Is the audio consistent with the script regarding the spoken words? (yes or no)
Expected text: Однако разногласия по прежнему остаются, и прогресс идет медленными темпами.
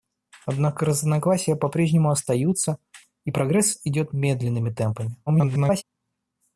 no